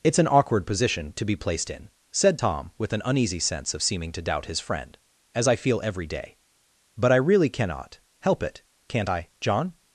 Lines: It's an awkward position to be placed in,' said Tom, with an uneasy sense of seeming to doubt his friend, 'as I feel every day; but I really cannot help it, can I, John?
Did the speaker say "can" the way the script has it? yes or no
no